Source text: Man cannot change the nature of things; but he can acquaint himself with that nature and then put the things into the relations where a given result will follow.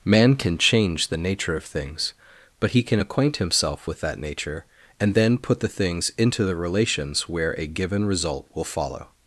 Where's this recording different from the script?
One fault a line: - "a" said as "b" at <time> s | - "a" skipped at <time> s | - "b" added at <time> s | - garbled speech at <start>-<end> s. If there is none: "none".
- "cannot" said as "can" at 0.3 s